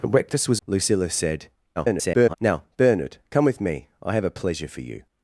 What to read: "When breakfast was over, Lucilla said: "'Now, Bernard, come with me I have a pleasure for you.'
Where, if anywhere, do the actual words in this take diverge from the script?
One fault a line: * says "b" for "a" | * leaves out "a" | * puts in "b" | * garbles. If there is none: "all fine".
* leaves out "over"
* garbles